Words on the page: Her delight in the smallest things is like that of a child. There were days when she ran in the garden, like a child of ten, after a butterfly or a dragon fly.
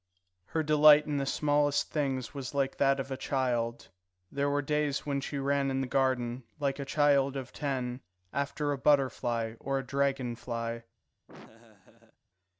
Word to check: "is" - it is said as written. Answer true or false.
false